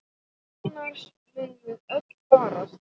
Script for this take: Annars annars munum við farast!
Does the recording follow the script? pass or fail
fail